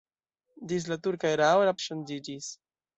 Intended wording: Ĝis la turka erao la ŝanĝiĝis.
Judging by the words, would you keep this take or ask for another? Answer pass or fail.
pass